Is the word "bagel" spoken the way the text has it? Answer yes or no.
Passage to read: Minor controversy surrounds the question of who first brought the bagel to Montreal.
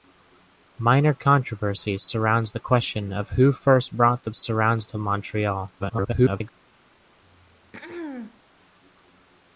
no